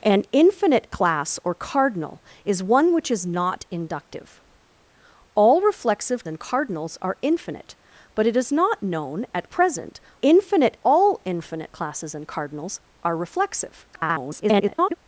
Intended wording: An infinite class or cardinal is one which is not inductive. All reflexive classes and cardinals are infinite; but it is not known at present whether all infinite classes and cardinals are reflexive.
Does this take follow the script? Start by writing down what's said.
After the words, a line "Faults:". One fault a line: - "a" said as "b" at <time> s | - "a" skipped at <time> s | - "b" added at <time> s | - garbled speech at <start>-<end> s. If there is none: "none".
An infinite class or cardinal is one which is not inductive. All reflexive and cardinals are infinite; but it is not known at present infinite all infinite classes and cardinals are reflexive. [garbled]
Faults:
- "classes" skipped at 6.2 s
- "whether" said as "infinite" at 10.2 s
- garbled speech at 13.9-14.9 s